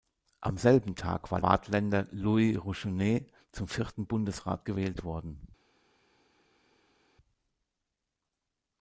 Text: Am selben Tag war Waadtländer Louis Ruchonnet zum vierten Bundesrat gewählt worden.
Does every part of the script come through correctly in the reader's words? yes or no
yes